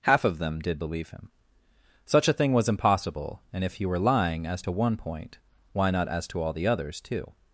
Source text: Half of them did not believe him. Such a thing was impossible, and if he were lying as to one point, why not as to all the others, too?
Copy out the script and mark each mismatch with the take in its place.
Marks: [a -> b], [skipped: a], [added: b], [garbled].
Half of them did [skipped: not] believe him. Such a thing was impossible, and if he were lying as to one point, why not as to all the others, too?